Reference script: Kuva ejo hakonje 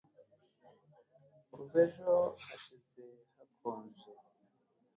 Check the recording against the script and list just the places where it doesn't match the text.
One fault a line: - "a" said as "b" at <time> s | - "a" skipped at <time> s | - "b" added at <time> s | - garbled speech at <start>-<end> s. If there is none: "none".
- "hashize" added at 2.5 s